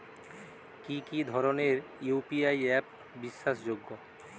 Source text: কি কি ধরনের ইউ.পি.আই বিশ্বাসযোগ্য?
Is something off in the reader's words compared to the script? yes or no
yes